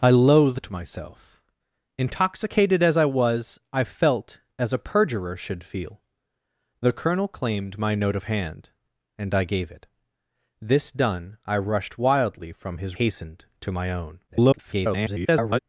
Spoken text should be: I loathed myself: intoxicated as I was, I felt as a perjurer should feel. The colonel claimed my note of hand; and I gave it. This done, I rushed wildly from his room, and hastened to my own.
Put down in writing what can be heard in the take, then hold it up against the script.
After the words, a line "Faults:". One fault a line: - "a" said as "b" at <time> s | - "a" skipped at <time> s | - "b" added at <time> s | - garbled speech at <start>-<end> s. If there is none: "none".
I loathed myself: intoxicated as I was, I felt as a perjurer should feel. The colonel claimed my note of hand; and I gave it. This done, I rushed wildly from his hastened to my own. [garbled]
Faults:
- "room and" skipped at 13.0 s
- garbled speech at 14.3-15.6 s